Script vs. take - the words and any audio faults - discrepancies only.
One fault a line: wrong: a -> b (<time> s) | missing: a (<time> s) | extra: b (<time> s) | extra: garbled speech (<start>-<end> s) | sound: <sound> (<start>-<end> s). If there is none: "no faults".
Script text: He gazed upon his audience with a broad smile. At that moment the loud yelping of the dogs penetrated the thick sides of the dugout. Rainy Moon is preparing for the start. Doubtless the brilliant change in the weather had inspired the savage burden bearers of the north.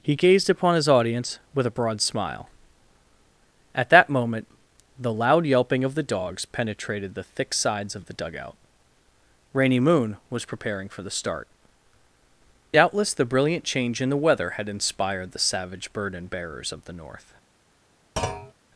wrong: is -> was (10.3 s)
sound: thud (18.2-18.5 s)